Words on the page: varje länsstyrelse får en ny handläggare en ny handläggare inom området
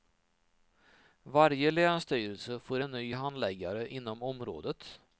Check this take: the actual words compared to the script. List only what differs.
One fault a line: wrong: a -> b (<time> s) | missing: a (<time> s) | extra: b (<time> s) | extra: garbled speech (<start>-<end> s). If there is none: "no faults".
missing: en ny handläggare (3.9 s)